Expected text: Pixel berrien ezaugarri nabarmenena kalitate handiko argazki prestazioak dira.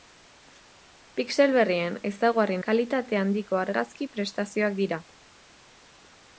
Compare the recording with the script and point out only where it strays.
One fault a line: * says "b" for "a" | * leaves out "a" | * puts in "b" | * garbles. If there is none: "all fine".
* leaves out "nabarmenena"